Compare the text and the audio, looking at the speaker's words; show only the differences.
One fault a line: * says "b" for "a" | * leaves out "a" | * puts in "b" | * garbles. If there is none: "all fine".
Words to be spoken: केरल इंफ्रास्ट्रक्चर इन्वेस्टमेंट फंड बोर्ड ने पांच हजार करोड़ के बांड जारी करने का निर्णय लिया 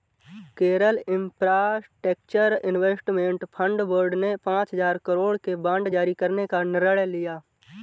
all fine